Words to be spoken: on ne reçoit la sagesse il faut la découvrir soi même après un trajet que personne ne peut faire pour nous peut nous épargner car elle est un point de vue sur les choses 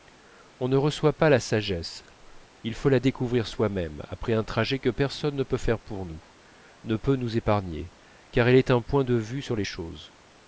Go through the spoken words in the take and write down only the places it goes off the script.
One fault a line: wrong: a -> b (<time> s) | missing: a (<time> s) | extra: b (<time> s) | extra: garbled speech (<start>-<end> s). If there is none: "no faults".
extra: pas (1.1 s)
extra: ne (6.8 s)